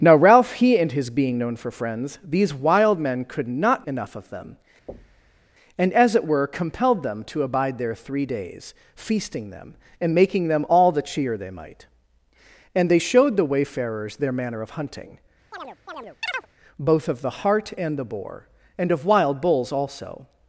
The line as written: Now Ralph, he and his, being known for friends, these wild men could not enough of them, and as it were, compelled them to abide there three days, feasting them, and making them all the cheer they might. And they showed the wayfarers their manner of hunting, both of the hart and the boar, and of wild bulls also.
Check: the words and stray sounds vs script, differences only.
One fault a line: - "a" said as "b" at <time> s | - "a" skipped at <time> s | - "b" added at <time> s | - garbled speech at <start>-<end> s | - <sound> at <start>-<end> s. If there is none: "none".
- thud at 4.9-5.4 s
- chirp at 15.5-16.5 s